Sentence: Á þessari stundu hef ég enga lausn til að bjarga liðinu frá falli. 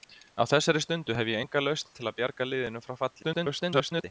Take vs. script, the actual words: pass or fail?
fail